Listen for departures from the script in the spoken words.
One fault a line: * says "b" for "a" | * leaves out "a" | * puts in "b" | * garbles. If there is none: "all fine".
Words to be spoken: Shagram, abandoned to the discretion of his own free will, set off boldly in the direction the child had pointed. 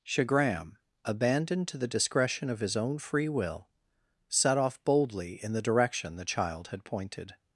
all fine